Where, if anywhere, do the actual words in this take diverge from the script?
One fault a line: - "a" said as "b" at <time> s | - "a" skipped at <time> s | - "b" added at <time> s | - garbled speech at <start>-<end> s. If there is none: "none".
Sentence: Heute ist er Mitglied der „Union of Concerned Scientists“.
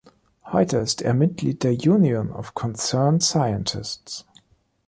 none